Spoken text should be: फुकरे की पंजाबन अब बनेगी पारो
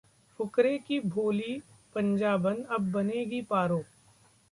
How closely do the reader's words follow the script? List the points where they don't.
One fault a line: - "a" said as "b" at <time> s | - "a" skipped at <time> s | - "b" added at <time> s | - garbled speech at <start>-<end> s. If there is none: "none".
- "भोली" added at 1.0 s